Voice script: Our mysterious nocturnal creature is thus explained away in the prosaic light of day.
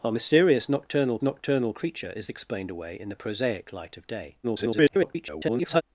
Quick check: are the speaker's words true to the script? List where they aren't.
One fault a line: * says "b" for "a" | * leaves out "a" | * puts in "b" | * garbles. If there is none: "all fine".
* puts in "nocturnal"
* leaves out "thus"
* garbles